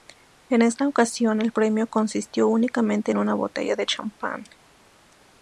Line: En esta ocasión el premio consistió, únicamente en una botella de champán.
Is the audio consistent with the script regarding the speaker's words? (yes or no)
yes